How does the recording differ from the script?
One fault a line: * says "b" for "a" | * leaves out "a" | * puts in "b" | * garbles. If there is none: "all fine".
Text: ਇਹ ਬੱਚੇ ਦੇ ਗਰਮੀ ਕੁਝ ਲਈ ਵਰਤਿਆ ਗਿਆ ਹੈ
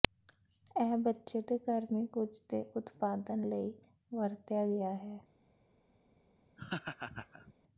* puts in "ਦੇ ਉਤਪਾਦਨ"